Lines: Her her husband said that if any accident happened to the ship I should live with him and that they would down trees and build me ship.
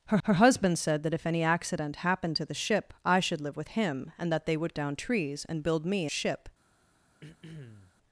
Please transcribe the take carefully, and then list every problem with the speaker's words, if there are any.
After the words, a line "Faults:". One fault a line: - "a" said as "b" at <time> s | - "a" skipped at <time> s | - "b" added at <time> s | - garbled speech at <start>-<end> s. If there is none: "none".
Her her husband said that if any accident happened to the ship I should live with him and that they would down trees and build me ship.
Faults:
none